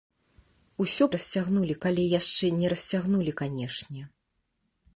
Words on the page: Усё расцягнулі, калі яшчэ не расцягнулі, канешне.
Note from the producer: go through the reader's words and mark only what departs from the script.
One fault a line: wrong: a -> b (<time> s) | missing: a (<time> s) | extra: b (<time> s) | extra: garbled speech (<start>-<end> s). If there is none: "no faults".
no faults